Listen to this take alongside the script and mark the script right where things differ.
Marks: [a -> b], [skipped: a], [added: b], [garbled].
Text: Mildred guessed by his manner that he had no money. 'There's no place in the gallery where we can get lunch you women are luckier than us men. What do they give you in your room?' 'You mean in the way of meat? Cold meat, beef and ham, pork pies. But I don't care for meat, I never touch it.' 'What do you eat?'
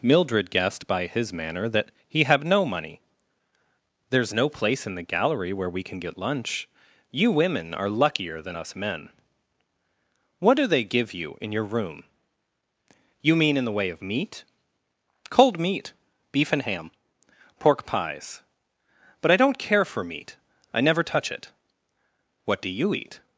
Mildred guessed by his manner that he [had -> have] no money. 'There's no place in the gallery where we can get lunch you women are luckier than us men. What do they give you in your room?' 'You mean in the way of meat? Cold meat, beef and ham, pork pies. But I don't care for meat, I never touch it.' 'What do you eat?'